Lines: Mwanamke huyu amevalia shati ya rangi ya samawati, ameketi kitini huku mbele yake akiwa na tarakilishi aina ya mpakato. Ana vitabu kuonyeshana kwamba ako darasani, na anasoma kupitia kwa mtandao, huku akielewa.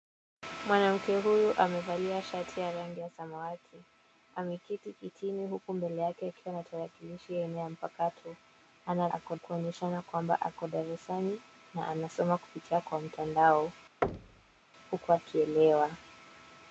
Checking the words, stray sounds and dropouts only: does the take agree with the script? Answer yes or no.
no